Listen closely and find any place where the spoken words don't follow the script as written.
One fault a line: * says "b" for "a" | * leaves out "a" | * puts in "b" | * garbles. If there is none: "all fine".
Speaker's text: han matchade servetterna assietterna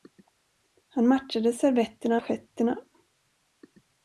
all fine